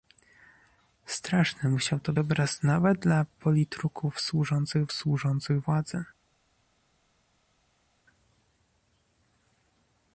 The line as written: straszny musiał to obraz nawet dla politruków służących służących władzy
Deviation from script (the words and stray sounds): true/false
false